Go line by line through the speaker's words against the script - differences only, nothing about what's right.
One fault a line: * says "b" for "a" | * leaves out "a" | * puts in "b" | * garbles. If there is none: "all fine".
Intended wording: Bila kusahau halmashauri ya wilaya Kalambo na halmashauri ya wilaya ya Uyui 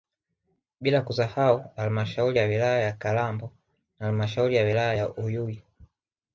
* puts in "ya"